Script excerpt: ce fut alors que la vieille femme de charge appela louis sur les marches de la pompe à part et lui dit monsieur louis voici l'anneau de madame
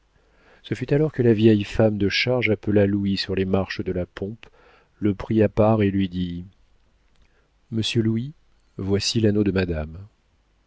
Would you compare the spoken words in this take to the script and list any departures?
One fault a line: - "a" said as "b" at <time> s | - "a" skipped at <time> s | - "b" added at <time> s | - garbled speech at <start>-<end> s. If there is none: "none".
- "le prit" added at 5.0 s